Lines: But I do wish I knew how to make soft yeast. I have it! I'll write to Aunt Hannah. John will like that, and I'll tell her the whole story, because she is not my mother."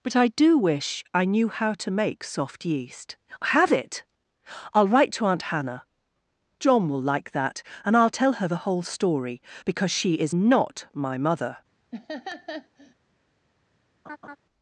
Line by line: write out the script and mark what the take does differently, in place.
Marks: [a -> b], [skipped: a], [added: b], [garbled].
But I do wish I knew how to make soft yeast. [skipped: I] have it! I'll write to Aunt Hannah. John will like that, and I'll tell her the whole story, because she is not my mother."